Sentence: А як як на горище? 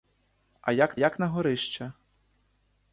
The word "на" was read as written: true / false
true